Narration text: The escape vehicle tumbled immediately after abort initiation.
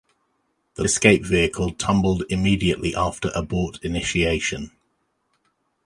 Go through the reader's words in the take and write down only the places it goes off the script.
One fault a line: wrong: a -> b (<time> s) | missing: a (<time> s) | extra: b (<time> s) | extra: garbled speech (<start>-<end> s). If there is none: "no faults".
no faults